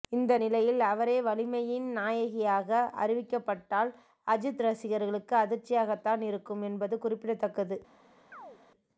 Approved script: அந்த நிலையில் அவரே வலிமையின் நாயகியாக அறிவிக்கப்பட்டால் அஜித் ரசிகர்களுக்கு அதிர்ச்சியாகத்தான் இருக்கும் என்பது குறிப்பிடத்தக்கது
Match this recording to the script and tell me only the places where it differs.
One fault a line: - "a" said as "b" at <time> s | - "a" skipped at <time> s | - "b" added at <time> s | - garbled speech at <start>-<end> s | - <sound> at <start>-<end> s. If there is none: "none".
- "அந்த" said as "இந்த" at 0.1 s
- chirp at 8.3-8.6 s